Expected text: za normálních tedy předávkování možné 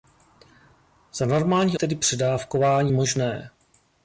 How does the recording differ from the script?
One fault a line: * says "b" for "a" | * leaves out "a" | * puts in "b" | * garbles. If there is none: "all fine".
all fine